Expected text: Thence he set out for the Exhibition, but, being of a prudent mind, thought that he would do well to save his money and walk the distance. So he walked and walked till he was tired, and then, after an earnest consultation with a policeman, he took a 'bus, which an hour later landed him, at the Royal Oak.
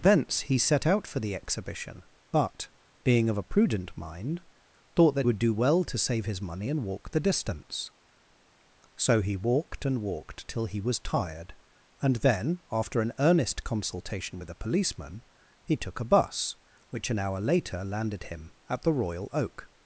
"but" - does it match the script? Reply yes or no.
yes